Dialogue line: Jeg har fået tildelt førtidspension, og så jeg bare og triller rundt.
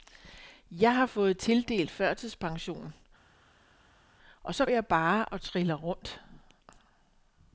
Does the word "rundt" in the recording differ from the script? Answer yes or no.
no